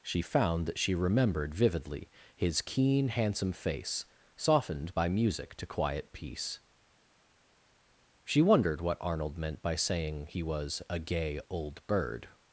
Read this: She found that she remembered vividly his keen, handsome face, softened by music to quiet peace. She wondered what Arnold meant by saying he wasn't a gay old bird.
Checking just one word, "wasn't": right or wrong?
wrong